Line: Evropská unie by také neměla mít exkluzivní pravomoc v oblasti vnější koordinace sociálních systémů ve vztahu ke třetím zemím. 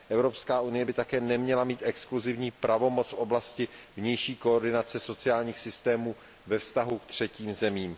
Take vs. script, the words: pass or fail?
pass